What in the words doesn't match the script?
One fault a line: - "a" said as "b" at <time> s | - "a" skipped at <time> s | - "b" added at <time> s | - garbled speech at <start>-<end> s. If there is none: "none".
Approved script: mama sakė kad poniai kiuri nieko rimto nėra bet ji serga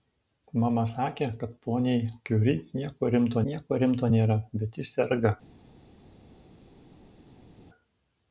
- "nieko rimto" added at 3.5 s